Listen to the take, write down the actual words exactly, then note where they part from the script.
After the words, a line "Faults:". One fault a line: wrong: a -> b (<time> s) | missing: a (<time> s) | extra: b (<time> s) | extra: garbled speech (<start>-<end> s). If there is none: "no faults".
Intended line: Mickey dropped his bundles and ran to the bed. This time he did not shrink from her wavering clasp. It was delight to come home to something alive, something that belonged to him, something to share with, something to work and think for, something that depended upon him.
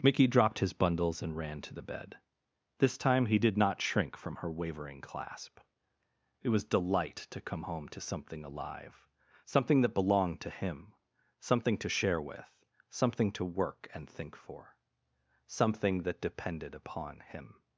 Mickey dropped his bundles and ran to the bed. This time he did not shrink from her wavering clasp. It was delight to come home to something alive, something that belonged to him, something to share with, something to work and think for, something that depended upon him.
Faults:
no faults